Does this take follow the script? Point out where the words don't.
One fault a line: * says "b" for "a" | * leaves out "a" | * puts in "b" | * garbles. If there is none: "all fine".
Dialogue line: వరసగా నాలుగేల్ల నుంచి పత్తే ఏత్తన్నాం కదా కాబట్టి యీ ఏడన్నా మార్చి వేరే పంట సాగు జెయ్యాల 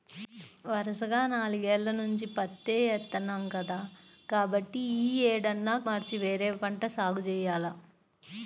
all fine